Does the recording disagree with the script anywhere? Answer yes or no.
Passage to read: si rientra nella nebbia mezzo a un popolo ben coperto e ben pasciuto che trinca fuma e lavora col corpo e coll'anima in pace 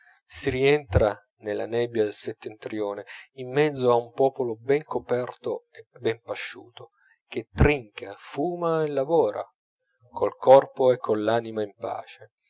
yes